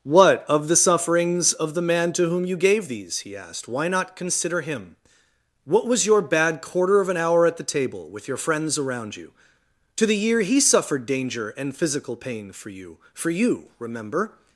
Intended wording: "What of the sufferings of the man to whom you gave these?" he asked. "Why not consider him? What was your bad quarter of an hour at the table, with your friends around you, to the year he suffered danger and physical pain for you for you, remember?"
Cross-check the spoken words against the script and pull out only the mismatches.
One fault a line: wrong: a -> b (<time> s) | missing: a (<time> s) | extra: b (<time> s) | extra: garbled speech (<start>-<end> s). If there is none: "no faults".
no faults